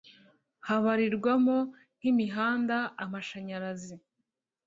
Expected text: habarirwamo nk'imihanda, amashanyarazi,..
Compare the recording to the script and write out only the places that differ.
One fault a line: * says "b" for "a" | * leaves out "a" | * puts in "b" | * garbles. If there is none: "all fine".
all fine